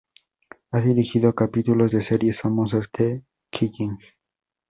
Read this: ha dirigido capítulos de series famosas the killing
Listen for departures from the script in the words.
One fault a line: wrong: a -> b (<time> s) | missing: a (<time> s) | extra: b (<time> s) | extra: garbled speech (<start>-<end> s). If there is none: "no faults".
no faults